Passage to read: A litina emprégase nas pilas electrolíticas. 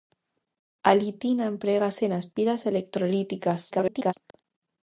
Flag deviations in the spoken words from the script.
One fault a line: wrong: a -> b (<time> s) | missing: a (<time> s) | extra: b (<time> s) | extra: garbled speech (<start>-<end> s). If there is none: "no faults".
extra: garbled speech (3.7-4.1 s)